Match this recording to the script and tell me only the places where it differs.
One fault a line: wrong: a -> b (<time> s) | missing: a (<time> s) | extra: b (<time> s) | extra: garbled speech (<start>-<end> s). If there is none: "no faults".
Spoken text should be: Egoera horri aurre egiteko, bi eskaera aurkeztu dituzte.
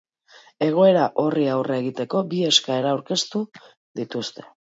no faults